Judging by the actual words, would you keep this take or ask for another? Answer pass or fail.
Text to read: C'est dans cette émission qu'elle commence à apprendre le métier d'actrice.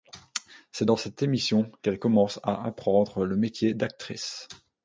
pass